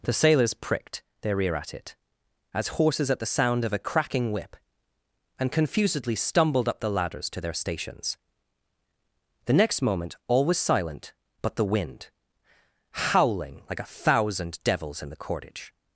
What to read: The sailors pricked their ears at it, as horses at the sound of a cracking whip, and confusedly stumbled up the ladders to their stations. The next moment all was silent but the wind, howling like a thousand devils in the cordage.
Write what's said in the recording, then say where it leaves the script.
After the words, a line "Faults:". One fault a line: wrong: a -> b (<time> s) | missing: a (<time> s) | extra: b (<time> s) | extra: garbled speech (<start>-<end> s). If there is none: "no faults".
The sailors pricked their ear at it, as horses at the sound of a cracking whip, and confusedly stumbled up the ladders to their stations. The next moment all was silent but the wind, howling like a thousand devils in the cordage.
Faults:
wrong: ears -> ear (1.4 s)